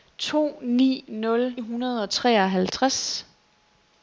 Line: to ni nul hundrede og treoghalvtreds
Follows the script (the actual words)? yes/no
yes